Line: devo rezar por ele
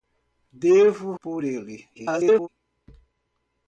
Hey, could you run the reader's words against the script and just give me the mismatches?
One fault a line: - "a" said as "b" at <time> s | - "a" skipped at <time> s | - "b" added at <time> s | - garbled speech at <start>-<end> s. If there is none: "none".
- "rezar" skipped at 1.1 s
- garbled speech at 1.9-2.5 s